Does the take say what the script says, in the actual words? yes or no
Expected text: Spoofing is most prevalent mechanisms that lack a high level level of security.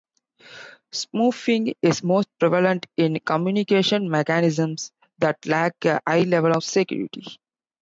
no